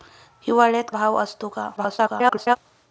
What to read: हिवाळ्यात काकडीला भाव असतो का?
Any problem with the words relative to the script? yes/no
yes